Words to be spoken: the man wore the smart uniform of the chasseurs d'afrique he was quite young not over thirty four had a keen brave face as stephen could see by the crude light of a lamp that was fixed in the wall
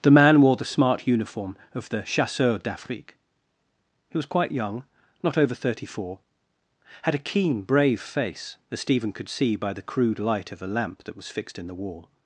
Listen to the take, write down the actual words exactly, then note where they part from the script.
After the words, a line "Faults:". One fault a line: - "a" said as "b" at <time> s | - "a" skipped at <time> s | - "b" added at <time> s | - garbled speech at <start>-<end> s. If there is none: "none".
the man wore the smart uniform of the chasseurs d'afrique he was quite young not over thirty four had a keen brave face as stephen could see by the crude light of a lamp that was fixed in the wall
Faults:
none